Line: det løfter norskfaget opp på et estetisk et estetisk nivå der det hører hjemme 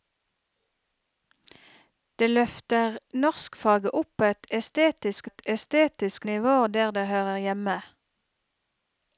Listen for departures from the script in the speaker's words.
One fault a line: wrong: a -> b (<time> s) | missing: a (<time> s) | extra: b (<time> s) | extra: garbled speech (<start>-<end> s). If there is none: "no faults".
no faults